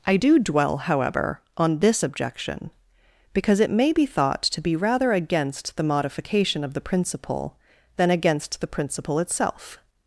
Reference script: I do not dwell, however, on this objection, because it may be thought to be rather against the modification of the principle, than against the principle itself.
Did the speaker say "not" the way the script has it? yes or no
no